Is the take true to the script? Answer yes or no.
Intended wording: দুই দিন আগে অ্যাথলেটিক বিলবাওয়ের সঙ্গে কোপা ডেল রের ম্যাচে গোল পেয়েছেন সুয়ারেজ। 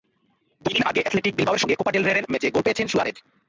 yes